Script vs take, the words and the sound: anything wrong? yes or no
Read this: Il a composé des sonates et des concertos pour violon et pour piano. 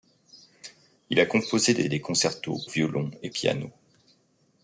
yes